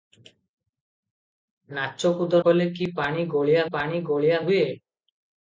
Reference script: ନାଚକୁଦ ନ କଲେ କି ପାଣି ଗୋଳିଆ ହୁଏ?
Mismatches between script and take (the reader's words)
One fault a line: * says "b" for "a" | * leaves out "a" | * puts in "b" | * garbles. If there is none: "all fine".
* leaves out "ନ"
* puts in "ପାଣି ଗୋଳିଆ"